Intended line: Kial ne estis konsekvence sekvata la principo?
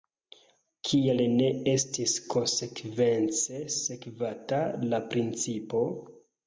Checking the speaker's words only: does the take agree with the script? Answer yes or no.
yes